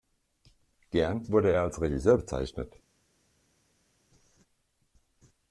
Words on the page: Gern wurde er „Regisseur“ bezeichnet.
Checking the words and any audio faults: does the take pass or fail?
fail